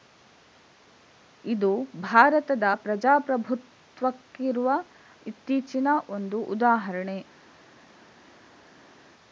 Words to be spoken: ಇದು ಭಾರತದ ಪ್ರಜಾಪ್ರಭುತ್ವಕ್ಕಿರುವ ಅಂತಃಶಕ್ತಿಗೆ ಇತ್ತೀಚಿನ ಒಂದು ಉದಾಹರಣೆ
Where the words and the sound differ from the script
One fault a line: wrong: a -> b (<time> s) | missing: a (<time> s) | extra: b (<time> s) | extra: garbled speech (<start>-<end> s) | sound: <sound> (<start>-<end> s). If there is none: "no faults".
missing: ಅಂತಃಶಕ್ತಿಗೆ (4.7 s)